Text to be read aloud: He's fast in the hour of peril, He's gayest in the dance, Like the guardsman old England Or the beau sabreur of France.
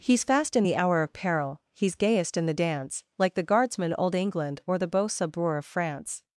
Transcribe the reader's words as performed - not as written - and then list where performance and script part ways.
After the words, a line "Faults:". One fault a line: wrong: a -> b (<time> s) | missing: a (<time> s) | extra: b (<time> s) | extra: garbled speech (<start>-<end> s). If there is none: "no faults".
He's fast in the hour of peril, He's gayest in the dance, Like the guardsman old England Or the beau sabreur of France.
Faults:
no faults